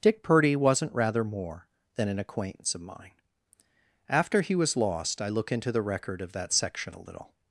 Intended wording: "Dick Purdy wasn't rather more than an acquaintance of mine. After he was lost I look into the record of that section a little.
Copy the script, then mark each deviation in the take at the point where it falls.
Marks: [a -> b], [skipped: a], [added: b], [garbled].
"Dick Purdy wasn't rather more than an acquaintance of mine. After he was lost I look into the record of that section a little.